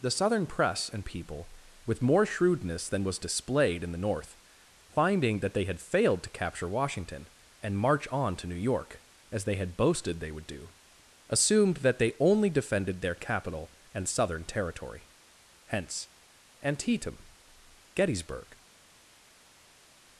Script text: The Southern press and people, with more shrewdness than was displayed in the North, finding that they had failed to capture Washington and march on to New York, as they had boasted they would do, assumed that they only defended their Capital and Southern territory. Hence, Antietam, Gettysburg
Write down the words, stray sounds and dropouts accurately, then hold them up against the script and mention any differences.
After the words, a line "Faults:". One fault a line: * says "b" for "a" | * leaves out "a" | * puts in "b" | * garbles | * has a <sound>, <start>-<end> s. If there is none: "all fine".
The Southern press and people, with more shrewdness than was displayed in the North, finding that they had failed to capture Washington and march on to New York, as they had boasted they would do, assumed that they only defended their Capital and Southern territory. Hence, Antietam, Gettysburg
Faults:
all fine